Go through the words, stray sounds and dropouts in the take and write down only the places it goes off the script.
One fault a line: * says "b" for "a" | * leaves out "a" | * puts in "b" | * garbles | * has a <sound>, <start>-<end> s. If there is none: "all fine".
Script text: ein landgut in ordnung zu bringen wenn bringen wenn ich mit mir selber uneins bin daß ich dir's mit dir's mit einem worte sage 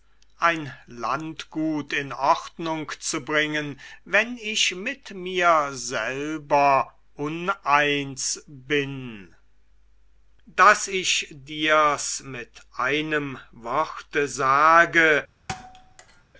* leaves out "bringen wenn"
* leaves out "dir's mit"
* has a thud, 15.5-16.2 s